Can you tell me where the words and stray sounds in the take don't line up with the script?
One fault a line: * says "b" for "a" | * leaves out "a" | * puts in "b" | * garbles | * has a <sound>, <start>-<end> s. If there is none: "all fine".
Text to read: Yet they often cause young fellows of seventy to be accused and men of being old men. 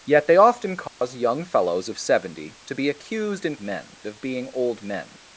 * has a dropout, 0.9-1.0 s